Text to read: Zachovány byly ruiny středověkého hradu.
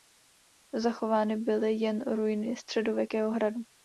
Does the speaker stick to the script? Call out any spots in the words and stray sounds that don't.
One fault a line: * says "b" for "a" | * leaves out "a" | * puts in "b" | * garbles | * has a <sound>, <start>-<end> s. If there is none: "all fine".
* puts in "jen"